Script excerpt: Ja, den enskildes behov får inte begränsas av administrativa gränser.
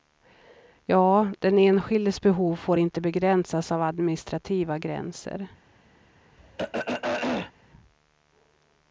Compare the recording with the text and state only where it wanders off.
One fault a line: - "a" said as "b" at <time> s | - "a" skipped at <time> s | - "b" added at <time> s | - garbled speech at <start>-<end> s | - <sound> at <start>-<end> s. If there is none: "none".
- throat clearing at 6.4-7.5 s